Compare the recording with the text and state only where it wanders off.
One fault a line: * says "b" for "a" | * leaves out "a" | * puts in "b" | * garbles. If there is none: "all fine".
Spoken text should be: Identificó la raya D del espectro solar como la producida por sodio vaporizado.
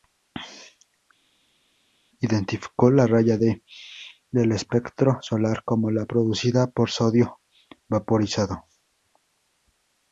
all fine